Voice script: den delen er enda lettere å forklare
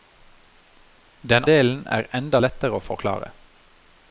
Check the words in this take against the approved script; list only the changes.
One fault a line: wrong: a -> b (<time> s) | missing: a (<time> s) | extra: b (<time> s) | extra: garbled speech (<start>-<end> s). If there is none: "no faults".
no faults